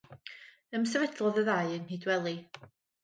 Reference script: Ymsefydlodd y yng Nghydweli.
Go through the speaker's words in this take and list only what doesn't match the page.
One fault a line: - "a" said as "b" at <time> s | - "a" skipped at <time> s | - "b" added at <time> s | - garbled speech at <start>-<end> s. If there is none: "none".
- "ddau" added at 1.5 s